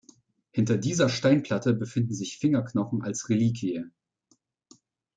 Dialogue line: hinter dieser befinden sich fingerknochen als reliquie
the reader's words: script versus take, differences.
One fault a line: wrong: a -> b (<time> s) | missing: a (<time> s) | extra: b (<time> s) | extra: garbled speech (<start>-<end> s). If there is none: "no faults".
extra: steinplatte (1.1 s)